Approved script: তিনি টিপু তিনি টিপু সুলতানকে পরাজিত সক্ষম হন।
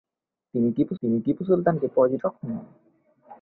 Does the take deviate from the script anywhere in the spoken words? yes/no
no